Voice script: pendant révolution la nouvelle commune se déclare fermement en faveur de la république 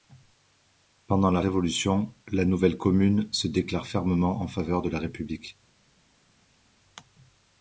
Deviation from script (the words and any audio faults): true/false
true